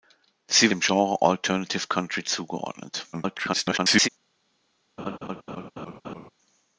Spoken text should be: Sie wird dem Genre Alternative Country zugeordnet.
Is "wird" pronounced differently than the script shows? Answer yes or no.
yes